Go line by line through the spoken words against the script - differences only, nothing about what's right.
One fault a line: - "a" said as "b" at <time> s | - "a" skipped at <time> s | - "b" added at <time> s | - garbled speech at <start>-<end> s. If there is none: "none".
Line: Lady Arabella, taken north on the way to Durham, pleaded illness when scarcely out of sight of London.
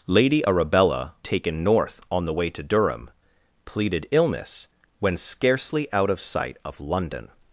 none